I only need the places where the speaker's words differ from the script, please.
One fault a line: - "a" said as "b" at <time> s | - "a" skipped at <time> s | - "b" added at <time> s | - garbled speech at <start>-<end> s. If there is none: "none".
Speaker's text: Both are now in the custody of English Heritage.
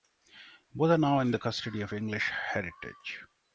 none